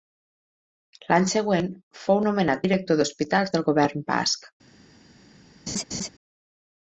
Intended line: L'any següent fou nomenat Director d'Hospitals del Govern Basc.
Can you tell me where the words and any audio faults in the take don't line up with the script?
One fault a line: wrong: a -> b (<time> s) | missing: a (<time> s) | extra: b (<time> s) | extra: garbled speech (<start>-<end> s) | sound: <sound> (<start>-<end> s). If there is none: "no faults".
sound: laugh (5.7-6.1 s)